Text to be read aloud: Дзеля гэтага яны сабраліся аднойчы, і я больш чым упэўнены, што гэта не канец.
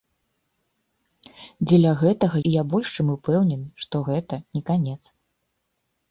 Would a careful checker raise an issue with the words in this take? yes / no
yes